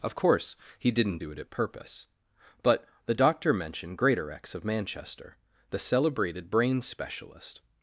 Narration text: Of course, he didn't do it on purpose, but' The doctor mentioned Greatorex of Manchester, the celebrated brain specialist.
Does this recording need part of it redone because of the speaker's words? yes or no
yes